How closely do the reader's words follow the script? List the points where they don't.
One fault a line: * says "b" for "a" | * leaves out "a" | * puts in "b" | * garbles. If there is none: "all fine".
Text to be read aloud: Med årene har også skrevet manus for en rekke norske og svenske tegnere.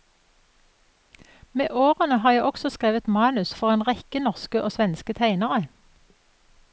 * puts in "jeg"